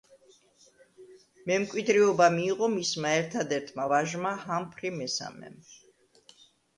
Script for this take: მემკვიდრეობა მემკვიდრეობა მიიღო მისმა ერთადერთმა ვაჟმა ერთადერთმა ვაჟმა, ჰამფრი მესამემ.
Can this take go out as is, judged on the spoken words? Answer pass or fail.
fail